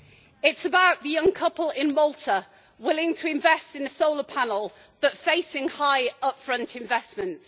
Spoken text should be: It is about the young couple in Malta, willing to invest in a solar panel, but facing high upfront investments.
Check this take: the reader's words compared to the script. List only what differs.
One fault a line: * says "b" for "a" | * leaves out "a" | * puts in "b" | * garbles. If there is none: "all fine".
all fine